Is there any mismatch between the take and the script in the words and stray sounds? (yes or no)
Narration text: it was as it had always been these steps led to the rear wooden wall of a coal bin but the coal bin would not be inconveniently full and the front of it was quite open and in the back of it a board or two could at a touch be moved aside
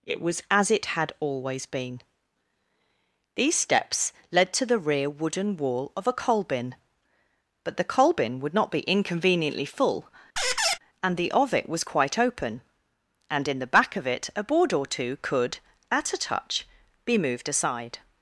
yes